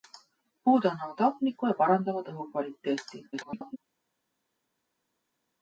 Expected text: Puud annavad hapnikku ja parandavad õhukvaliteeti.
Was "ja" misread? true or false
false